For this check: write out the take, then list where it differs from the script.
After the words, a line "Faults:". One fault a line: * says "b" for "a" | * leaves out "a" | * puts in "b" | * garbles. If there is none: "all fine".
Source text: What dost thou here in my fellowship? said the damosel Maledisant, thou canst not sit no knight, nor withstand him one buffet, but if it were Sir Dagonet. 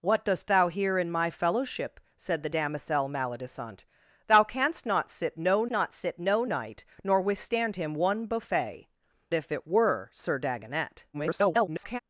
What dost thou here in my fellowship? said the damosel Maledisant, thou canst not sit no not sit no knight, nor withstand him one buffet, if it were Sir Dagonet. [garbled]
Faults:
* puts in "not sit no"
* leaves out "but"
* garbles